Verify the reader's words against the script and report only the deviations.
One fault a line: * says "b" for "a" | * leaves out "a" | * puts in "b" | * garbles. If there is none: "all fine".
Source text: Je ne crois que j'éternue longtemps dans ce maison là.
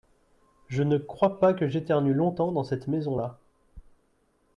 * puts in "pas"
* says "cette" for "ce"